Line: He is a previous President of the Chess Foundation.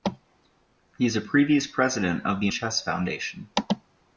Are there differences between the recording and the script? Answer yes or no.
no